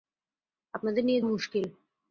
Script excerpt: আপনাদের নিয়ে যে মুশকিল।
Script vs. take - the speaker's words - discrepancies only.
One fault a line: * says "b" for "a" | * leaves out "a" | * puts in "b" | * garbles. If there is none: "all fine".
* leaves out "যে"